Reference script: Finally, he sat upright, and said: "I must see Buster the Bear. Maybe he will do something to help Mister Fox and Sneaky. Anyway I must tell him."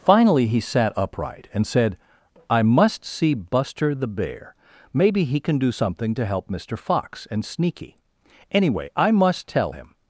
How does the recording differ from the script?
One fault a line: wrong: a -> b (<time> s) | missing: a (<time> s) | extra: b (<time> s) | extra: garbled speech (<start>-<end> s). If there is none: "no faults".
wrong: will -> can (5.4 s)